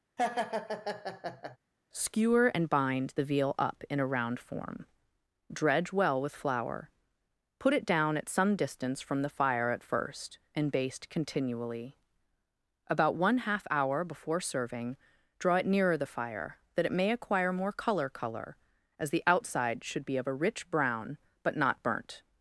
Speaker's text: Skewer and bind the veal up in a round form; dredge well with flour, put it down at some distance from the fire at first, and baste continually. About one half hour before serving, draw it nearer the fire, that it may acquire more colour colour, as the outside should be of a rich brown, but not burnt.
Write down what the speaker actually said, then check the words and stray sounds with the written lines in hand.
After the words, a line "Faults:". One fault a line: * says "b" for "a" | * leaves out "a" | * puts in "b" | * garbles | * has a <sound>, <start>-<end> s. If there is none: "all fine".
Skewer and bind the veal up in a round form; dredge well with flour, put it down at some distance from the fire at first, and baste continually. About one half hour before serving, draw it nearer the fire, that it may acquire more colour colour, as the outside should be of a rich brown, but not burnt.
Faults:
* has a laugh, 0.2-1.6 s